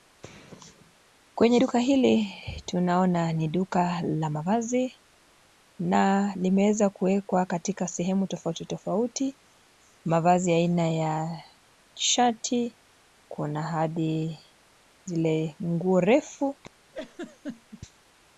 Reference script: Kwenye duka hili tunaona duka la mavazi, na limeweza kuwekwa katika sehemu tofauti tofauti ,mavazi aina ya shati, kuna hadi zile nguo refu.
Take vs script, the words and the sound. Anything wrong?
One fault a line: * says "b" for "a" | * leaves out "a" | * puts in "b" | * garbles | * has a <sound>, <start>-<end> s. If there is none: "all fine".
* puts in "ni"
* has a laugh, 16.9-17.8 s